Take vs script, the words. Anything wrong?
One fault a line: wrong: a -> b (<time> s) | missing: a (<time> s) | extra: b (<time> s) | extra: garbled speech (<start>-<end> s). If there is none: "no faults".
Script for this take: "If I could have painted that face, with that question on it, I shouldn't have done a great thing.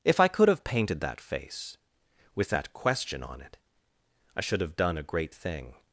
wrong: shouldn't -> should (4.4 s)